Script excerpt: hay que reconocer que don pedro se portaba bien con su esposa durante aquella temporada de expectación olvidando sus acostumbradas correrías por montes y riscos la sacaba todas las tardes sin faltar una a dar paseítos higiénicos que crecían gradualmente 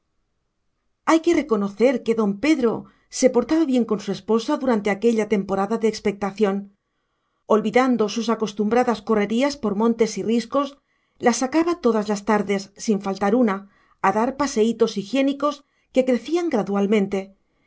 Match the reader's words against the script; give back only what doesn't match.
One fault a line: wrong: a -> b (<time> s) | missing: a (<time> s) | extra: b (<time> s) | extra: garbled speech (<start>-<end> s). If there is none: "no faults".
no faults